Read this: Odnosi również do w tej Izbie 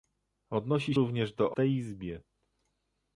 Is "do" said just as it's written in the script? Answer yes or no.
yes